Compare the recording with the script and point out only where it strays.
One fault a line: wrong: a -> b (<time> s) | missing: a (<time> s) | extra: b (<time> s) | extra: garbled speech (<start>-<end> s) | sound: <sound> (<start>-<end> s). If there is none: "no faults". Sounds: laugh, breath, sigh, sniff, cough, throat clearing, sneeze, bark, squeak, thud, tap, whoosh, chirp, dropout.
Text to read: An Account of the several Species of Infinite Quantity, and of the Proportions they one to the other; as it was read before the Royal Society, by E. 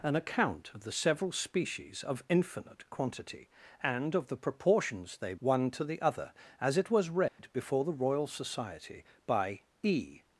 sound: dropout (7.3-7.4 s)